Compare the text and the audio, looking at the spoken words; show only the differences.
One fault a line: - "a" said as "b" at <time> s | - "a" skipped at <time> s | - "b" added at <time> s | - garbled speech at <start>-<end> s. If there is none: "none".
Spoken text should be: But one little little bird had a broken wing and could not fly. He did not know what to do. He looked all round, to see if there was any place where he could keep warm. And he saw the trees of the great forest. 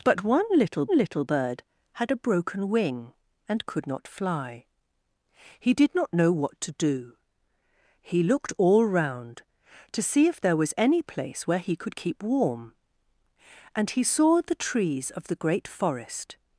none